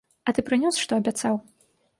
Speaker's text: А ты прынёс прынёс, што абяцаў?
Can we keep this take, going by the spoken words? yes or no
no